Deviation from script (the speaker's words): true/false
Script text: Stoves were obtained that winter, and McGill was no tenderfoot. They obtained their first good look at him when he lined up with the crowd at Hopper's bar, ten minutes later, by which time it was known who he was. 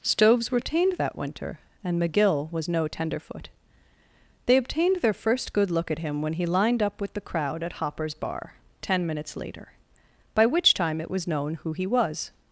false